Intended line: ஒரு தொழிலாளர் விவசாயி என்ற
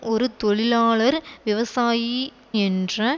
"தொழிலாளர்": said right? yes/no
yes